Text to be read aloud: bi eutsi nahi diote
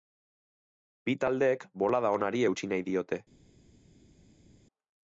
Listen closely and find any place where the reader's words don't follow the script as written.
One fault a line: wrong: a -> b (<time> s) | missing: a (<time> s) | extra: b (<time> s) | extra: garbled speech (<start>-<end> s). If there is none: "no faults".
extra: taldeek bolada onari (1.2 s)